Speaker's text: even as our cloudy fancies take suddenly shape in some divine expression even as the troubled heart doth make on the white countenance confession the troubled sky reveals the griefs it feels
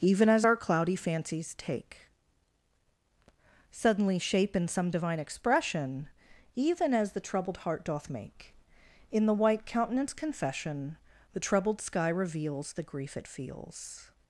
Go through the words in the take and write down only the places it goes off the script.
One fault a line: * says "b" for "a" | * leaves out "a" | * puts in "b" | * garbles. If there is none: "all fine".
* says "in" for "on"
* says "grief" for "griefs"